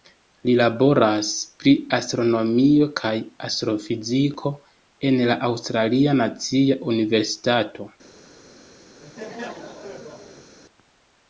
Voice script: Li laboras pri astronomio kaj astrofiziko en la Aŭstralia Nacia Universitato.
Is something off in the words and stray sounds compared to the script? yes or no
yes